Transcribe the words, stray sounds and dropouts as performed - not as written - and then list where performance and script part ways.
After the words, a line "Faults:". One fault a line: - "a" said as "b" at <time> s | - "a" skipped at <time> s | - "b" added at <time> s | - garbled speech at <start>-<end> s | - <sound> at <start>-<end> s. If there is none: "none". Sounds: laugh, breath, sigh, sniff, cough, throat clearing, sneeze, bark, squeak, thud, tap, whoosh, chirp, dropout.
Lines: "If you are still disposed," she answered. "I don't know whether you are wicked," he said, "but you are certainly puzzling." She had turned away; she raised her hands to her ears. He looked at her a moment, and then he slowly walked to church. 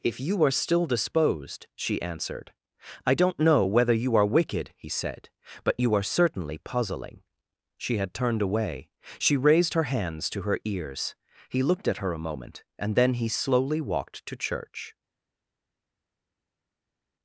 "If you are still disposed," she answered. "I don't know whether you are wicked," he said, "but you are certainly puzzling." She had turned away; she raised her hands to her ears. He looked at her a moment, and then he slowly walked to church.
Faults:
none